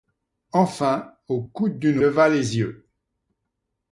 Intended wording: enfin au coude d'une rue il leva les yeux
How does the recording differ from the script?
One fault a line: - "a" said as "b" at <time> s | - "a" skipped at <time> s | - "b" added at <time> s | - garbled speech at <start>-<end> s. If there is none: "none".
- "rue il" skipped at 2.0 s